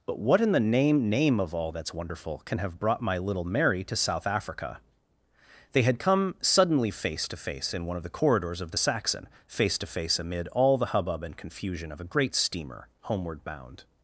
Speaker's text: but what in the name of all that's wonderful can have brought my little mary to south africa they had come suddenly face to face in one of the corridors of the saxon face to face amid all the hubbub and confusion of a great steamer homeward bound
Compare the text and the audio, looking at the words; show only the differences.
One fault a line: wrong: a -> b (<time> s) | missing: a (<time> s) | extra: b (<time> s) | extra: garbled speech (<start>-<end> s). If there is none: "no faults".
extra: name (1.1 s)